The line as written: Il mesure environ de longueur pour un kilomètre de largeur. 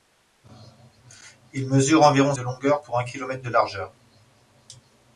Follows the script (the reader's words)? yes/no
yes